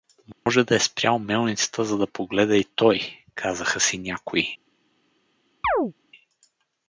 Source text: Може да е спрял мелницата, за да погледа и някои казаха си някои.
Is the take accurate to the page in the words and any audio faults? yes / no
no